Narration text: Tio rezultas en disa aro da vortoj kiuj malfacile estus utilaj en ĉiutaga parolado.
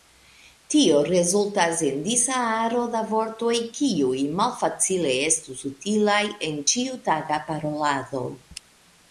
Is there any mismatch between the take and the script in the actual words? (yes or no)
no